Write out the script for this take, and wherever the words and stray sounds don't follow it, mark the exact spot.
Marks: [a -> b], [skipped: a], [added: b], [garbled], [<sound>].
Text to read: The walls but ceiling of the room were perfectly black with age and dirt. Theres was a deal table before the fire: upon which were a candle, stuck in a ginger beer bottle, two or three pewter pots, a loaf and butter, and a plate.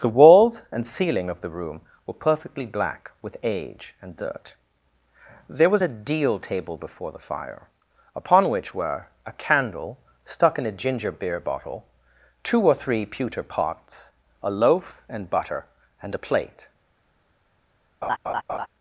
The walls [but -> and] ceiling of the room were perfectly black with age and dirt. [Theres -> There] was a deal table before the fire: upon which were a candle, stuck in a ginger beer bottle, two or three pewter pots, a loaf and butter, and a plate. [laugh]